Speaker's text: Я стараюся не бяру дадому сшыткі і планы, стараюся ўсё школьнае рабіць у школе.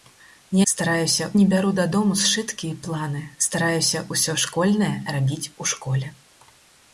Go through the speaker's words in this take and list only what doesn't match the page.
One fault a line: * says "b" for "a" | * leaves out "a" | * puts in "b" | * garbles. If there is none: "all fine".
all fine